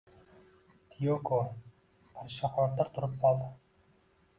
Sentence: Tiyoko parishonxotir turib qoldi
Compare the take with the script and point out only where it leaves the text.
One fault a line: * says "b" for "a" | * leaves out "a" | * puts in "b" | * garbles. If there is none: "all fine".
all fine